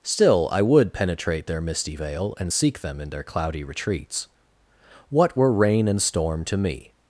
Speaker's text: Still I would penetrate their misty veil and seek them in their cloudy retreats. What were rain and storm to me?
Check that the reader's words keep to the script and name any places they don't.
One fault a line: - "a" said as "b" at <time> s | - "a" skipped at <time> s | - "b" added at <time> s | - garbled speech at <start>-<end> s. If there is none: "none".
none